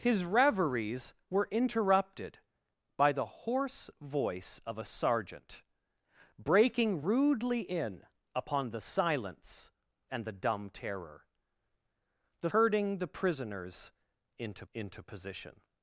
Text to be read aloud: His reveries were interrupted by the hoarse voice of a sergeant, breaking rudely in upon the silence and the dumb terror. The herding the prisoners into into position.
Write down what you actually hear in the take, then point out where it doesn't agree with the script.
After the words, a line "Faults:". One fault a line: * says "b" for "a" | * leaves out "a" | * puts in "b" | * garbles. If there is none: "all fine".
His reveries were interrupted by the hoarse voice of a sergeant, breaking rudely in upon the silence and the dumb terror. The herding the prisoners into into position.
Faults:
all fine